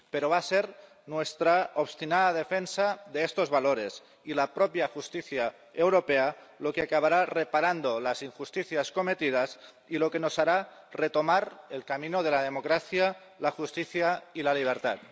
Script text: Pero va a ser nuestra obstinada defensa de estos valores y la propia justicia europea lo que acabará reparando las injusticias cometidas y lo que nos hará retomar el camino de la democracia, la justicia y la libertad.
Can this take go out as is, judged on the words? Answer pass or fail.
pass